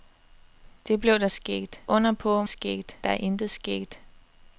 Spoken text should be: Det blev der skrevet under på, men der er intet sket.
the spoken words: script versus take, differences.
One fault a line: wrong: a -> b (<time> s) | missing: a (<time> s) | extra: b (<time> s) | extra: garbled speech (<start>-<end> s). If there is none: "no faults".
wrong: skrevet -> sket (1.3 s)
wrong: men -> sket (2.5 s)